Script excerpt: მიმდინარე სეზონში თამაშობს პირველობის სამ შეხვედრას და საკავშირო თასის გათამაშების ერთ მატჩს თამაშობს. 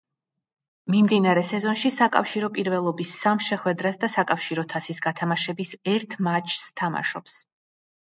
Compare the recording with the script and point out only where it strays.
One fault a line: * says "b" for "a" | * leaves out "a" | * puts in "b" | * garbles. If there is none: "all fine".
* says "საკავშირო" for "თამაშობს"